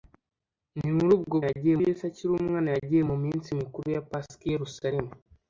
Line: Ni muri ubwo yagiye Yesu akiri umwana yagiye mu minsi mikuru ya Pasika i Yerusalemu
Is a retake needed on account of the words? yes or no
no